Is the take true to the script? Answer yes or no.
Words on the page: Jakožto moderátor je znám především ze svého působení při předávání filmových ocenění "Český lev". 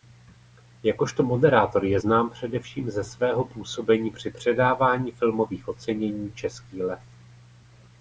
yes